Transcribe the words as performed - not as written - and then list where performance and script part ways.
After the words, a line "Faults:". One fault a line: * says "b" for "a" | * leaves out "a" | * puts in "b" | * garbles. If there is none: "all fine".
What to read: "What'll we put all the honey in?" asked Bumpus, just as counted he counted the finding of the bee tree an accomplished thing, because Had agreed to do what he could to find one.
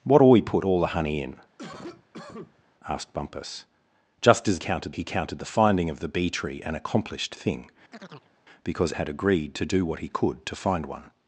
"What'll we put all the honey in?" asked Bumpus, just as counted he counted the finding of the bee tree an accomplished thing, because Had agreed to do what he could to find one.
Faults:
all fine